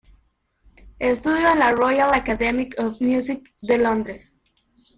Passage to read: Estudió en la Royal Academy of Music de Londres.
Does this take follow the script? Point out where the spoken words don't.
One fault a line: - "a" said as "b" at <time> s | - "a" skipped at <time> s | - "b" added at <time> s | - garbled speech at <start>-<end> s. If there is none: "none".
none